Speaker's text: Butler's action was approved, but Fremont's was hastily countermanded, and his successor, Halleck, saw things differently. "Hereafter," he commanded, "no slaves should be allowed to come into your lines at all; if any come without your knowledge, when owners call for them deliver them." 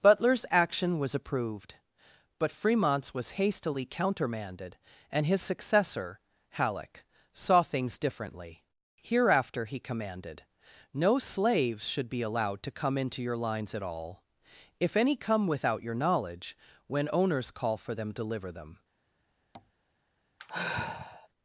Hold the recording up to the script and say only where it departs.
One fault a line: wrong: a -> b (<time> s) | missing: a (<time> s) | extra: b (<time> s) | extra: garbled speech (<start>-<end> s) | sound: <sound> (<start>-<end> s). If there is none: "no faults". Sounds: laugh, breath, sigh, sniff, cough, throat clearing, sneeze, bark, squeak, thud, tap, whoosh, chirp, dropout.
sound: tap (19.5-19.7 s)
sound: sigh (20.4-21.3 s)